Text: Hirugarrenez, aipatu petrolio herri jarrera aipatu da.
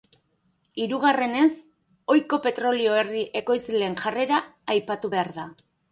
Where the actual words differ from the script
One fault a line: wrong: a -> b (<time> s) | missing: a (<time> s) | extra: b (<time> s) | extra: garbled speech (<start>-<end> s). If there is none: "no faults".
wrong: aipatu -> ohiko (2.1 s)
extra: ekoizleen (3.4 s)
extra: behar (5.2 s)